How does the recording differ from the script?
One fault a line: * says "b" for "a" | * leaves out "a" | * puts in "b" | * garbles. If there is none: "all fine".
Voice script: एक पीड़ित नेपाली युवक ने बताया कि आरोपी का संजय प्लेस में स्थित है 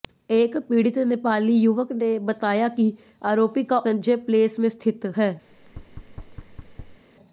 all fine